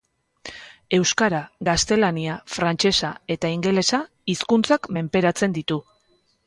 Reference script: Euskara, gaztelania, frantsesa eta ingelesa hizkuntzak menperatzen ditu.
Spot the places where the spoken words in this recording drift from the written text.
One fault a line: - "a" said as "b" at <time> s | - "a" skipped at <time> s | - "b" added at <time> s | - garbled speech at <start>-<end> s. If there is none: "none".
none